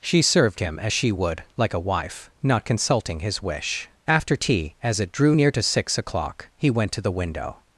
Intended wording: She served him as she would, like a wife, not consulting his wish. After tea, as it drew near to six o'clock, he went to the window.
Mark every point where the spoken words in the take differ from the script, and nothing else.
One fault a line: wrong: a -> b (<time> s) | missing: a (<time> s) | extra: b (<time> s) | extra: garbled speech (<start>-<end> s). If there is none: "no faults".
no faults